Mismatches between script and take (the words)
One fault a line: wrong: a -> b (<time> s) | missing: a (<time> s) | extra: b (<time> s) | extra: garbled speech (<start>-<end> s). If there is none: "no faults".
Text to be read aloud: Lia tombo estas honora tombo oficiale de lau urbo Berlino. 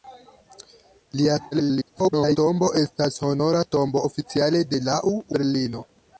extra: garbled speech (1.5-2.4 s)
missing: urbo (5.2 s)